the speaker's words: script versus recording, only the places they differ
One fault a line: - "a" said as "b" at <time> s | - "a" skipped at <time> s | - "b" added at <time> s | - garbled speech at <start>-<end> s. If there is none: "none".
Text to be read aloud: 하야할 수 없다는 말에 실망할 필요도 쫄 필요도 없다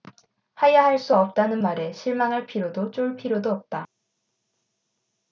none